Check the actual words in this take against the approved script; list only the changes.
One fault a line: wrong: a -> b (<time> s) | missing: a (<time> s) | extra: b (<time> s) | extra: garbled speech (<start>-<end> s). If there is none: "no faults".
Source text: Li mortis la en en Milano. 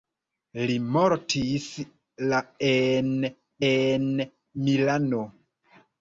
no faults